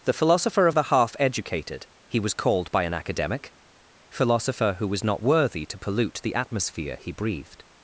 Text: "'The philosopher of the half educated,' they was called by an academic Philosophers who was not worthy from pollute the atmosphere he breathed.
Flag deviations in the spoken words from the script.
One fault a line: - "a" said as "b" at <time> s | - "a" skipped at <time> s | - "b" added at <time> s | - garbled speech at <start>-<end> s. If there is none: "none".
- "they" said as "he" at 2.1 s
- "Philosophers" said as "Philosopher" at 4.1 s
- "from" said as "to" at 5.7 s